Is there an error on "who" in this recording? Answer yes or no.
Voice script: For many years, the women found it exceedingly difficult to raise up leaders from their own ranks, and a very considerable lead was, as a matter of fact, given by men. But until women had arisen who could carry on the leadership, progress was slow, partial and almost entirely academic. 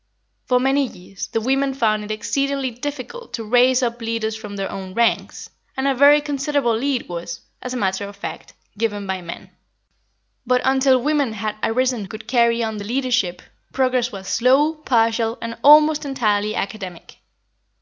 yes